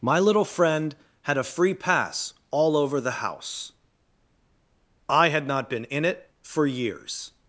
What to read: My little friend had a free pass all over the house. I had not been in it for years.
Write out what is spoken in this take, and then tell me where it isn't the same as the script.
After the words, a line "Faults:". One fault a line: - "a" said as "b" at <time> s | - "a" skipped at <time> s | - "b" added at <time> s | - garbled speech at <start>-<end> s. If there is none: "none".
My little friend had a free pass all over the house. I had not been in it for years.
Faults:
none